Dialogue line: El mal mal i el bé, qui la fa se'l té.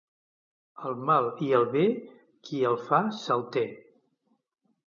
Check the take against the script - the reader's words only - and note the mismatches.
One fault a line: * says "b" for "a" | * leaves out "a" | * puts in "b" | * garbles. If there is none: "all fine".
* leaves out "mal"
* says "el" for "la"